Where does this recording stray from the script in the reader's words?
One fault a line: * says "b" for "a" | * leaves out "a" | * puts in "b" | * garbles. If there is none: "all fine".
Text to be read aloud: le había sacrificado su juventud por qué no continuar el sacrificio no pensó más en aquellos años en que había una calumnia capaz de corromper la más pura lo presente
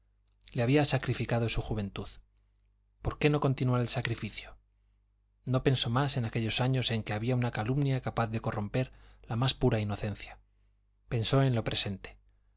* puts in "inocencia pensó en"